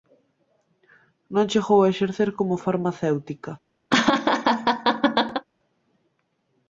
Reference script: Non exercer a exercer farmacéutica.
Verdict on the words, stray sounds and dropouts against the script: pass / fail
fail